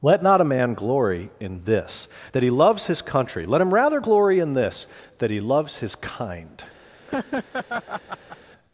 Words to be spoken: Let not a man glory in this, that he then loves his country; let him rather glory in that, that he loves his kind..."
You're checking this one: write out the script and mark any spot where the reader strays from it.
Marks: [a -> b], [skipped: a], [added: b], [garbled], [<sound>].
Let not a man glory in this, that he [skipped: then] loves his country; let him rather glory in [that, -> this] that he loves his kind..." [laugh]